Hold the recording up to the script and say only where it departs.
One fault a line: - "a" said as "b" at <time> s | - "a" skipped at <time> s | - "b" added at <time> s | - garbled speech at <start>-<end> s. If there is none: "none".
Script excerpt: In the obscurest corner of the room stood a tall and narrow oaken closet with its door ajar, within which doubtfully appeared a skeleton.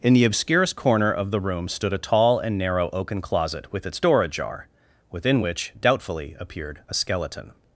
none